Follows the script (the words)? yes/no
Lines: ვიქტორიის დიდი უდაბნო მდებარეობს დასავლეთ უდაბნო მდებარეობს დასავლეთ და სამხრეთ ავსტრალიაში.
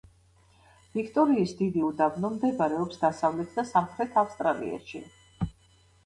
no